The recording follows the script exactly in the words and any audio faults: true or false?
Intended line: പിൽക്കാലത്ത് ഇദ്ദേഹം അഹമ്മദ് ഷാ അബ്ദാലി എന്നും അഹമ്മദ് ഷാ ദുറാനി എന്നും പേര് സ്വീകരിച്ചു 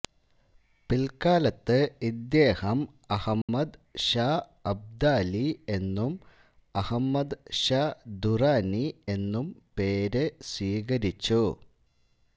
false